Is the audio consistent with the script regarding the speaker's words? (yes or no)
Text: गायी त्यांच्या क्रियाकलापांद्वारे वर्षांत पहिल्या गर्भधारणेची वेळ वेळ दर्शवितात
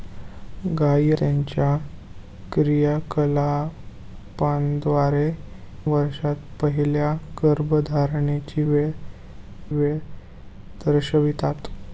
yes